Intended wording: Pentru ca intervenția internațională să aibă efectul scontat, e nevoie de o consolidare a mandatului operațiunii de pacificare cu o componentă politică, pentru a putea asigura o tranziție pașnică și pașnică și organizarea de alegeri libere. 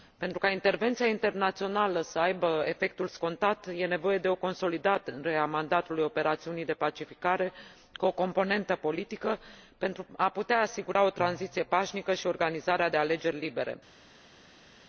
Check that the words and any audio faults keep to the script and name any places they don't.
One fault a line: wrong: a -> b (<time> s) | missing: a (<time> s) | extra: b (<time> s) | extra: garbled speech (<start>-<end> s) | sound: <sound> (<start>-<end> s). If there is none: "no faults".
missing: pașnică și (12.3 s)